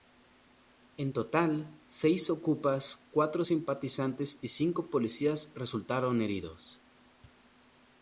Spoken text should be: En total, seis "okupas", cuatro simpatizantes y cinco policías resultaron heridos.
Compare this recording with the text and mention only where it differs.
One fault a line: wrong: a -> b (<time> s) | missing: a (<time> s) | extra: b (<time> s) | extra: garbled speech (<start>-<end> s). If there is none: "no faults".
no faults